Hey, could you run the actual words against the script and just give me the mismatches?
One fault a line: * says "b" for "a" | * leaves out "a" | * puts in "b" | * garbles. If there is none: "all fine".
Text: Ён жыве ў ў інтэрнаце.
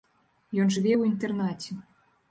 * leaves out "ў"